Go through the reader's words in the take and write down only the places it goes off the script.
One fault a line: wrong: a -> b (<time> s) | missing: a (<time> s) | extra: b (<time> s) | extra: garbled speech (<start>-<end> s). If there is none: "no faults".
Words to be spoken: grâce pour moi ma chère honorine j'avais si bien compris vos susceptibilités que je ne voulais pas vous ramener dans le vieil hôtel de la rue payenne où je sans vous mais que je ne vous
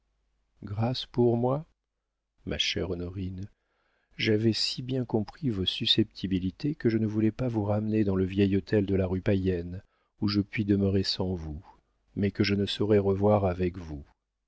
extra: puis demeurer (10.4 s)
extra: saurais revoir avec (12.7 s)